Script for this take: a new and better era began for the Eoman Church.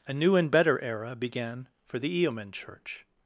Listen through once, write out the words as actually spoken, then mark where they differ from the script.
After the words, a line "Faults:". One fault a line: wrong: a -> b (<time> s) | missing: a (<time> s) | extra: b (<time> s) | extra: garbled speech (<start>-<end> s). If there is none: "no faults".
a new and better era began for the Eoman Church.
Faults:
no faults